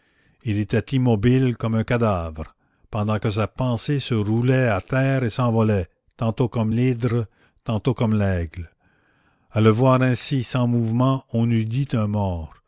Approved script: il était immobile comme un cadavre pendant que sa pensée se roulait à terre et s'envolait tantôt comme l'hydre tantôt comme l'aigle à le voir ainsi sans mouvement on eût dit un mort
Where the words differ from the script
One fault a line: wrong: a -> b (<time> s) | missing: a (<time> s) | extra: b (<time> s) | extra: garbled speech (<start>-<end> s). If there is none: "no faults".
no faults